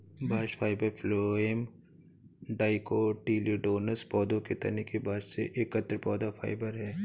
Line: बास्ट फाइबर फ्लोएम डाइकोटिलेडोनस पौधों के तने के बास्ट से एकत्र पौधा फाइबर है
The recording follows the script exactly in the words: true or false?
true